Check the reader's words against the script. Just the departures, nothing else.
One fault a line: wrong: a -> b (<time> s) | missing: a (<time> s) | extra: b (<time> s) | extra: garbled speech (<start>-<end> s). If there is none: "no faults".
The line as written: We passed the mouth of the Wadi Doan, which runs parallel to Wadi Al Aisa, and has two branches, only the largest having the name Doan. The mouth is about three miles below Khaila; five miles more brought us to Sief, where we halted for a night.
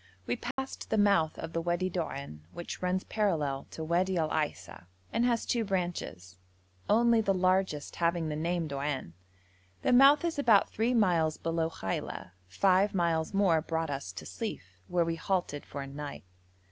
no faults